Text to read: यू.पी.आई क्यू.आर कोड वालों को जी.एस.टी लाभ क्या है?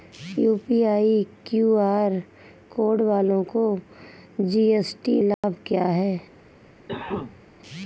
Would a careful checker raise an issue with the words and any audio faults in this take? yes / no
yes